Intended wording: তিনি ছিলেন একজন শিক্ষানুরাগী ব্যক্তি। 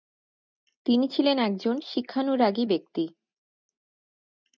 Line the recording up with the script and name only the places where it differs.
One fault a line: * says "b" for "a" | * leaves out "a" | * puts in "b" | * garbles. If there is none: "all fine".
all fine